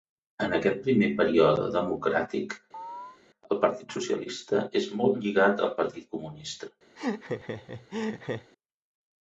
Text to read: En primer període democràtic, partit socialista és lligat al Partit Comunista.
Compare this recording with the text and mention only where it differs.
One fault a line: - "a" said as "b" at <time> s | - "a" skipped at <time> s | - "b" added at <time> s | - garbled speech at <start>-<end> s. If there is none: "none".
- "aquest" added at 0.6 s
- "el" added at 3.5 s
- "molt" added at 5.0 s